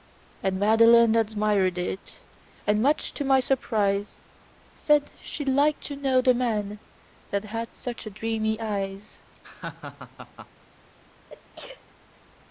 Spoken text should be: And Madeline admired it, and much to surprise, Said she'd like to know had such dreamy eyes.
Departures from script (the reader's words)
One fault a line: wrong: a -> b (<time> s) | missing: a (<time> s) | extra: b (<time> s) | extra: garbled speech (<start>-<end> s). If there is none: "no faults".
extra: my (3.2 s)
extra: the man that (6.2 s)